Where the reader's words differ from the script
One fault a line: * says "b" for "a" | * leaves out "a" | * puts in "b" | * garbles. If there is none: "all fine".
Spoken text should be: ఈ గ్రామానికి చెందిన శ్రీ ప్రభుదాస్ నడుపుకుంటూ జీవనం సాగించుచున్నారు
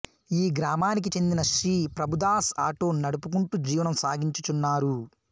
* puts in "ఆటో"